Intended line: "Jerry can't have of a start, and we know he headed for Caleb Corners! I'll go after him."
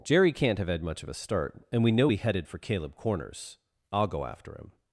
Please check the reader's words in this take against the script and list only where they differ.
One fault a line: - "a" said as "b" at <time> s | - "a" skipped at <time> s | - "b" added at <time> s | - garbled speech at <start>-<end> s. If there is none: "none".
- "had much" added at 0.7 s